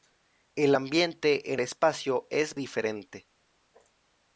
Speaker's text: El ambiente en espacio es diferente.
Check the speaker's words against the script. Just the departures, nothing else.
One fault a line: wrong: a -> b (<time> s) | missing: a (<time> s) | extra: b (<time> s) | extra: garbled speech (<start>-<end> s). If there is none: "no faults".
no faults